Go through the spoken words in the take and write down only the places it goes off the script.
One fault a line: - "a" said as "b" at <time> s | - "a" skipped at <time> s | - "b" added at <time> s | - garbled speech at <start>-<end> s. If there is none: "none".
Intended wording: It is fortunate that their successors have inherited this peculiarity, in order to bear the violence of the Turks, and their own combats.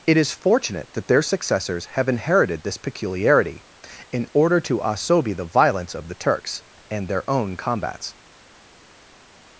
- "bear" said as "asobi" at 4.8 s